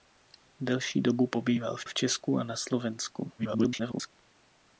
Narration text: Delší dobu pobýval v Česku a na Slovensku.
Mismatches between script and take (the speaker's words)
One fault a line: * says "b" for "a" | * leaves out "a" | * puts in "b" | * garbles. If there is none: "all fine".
* puts in "v"
* garbles